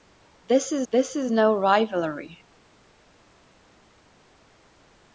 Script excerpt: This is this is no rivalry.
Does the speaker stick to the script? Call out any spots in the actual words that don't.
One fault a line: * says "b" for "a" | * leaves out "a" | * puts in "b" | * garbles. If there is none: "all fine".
all fine